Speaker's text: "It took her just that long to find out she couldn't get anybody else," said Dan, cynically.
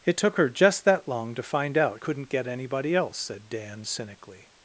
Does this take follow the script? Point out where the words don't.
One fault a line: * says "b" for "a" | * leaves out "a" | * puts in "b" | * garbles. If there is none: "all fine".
* leaves out "she"